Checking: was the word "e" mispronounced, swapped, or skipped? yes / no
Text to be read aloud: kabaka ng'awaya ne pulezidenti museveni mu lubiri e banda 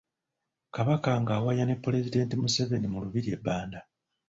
no